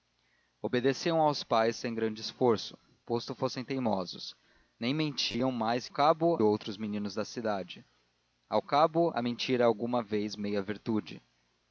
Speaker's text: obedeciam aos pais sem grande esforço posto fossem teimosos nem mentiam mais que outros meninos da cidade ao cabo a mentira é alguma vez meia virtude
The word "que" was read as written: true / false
false